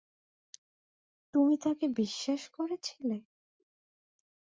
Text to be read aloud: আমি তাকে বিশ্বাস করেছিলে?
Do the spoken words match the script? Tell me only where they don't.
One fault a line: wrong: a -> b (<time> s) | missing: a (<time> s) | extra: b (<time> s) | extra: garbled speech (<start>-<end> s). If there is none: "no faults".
wrong: আমি -> তুমি (1.3 s)